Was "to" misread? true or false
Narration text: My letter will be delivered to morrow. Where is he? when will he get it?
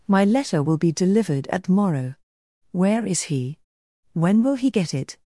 true